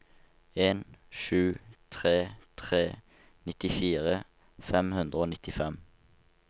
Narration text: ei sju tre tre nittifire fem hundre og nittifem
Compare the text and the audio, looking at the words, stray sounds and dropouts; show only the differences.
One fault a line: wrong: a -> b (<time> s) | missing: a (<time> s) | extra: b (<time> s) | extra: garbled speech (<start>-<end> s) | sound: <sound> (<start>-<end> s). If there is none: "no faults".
wrong: ei -> en (0.7 s)